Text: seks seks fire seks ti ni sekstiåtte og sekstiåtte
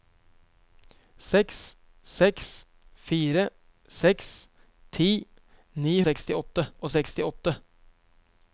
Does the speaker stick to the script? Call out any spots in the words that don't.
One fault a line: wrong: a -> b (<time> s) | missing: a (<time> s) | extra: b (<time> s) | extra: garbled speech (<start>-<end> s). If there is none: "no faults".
no faults